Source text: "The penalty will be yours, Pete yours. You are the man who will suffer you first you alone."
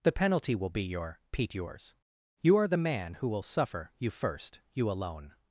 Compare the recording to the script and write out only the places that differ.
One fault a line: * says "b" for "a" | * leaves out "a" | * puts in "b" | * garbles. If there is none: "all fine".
* says "your" for "yours"